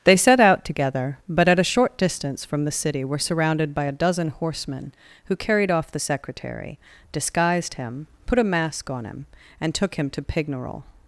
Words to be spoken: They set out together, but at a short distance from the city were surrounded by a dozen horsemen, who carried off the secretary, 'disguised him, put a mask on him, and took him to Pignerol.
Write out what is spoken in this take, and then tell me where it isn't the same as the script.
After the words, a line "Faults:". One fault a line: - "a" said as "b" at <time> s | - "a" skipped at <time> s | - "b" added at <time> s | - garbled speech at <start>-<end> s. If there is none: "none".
They set out together, but at a short distance from the city were surrounded by a dozen horsemen, who carried off the secretary, 'disguised him, put a mask on him, and took him to Pignerol.
Faults:
none